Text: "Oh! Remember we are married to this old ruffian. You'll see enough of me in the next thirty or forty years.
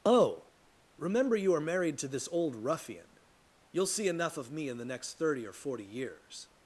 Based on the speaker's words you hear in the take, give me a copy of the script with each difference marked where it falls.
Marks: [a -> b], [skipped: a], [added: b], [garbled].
"Oh! Remember [we -> you] are married to this old ruffian. You'll see enough of me in the next thirty or forty years.